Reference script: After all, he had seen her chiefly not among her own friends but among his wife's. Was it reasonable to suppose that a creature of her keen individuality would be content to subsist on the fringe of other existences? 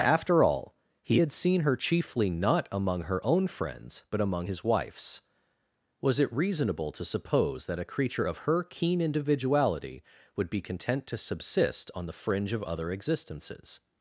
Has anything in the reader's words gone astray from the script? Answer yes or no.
no